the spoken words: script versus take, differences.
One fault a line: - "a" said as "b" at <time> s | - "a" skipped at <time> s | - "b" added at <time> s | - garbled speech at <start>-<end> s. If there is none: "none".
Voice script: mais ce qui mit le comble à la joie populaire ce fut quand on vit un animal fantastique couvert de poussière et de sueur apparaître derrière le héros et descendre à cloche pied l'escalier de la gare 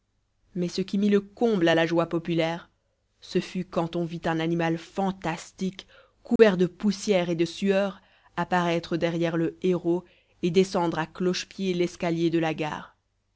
none